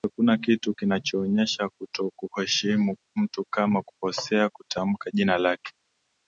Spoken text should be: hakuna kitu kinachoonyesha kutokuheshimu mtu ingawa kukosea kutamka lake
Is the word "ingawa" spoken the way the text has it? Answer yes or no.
no